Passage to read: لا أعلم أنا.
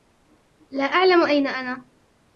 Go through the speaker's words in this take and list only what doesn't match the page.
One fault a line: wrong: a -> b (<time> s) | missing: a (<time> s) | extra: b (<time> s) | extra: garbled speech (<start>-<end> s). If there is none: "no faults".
extra: أين (1.2 s)